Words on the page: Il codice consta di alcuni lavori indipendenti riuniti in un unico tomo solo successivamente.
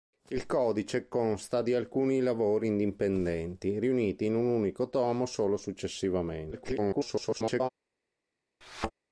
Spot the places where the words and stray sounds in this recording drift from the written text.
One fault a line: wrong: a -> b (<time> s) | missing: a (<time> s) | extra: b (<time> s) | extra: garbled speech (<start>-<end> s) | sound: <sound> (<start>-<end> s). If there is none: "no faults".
extra: garbled speech (6.5-7.7 s)
sound: thud (8.6-8.9 s)